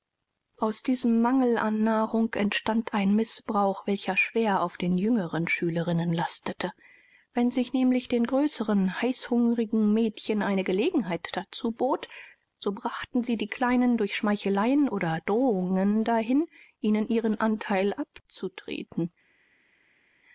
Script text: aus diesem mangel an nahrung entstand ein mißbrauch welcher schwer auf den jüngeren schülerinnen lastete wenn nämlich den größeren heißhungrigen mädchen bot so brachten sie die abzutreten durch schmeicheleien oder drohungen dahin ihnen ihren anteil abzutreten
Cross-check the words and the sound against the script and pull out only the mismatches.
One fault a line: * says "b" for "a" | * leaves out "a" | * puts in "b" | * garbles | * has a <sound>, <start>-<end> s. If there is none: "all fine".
* puts in "sich"
* puts in "eine gelegenheit dazu"
* says "kleinen" for "abzutreten"